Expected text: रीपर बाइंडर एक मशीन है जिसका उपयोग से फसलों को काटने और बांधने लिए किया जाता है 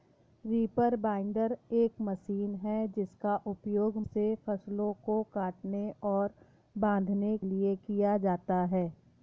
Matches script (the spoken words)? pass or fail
pass